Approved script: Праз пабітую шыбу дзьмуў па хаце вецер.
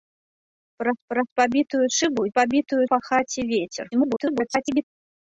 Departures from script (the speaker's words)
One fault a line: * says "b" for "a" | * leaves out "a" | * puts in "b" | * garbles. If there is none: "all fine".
* puts in "праз"
* says "пабітую" for "дзьмуў"
* garbles